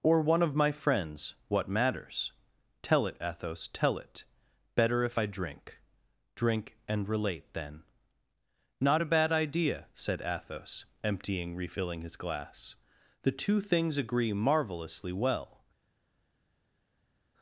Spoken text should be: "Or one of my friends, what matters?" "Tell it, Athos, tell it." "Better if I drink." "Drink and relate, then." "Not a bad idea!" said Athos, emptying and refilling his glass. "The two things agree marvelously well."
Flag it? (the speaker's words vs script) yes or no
yes